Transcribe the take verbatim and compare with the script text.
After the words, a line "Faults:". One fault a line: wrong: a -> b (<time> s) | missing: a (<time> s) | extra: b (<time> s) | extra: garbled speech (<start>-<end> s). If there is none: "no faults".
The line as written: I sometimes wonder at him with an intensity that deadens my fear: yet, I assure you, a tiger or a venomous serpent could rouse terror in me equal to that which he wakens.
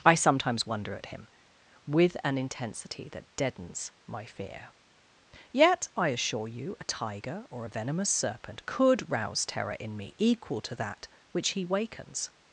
I sometimes wonder at him with an intensity that deadens my fear: yet, I assure you, a tiger or a venomous serpent could rouse terror in me equal to that which he wakens.
Faults:
no faults